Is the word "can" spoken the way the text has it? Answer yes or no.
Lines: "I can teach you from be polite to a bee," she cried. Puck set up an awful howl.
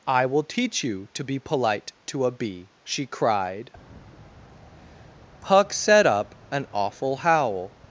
no